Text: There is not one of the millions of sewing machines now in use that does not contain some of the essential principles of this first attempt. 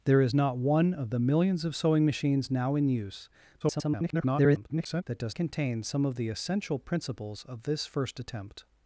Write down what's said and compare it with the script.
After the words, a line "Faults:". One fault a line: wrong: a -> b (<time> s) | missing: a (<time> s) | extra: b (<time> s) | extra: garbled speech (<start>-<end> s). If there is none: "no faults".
There is not one of the millions of sewing machines now in use [garbled] that does contain some of the essential principles of this first attempt.
Faults:
extra: garbled speech (3.6-5.0 s)
missing: not (5.3 s)